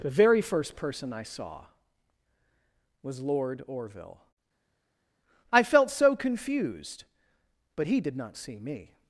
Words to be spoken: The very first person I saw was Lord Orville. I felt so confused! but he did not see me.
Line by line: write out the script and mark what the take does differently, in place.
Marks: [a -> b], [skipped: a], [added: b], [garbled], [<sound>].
The very first person I saw was Lord Orville. I felt so confused! but he did not see me.